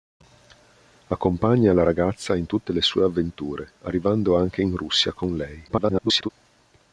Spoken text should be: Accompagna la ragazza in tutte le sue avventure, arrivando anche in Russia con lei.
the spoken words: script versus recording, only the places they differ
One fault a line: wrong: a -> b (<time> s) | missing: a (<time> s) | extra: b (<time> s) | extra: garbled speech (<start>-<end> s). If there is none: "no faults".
extra: garbled speech (5.7-6.3 s)